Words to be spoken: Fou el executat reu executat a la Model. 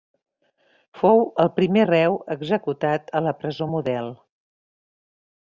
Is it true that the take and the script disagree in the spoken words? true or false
true